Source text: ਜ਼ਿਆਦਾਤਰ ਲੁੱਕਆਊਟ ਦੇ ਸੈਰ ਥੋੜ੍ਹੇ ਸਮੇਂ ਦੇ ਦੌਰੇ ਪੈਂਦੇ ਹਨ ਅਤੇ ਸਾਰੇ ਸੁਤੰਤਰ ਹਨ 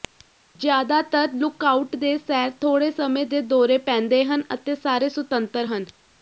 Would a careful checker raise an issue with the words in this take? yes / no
no